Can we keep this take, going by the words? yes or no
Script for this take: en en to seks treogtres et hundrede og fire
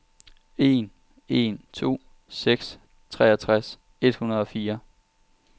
yes